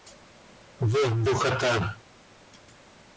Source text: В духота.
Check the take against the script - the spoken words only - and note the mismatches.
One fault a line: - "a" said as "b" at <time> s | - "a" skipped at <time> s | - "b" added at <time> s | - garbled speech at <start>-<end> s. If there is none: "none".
none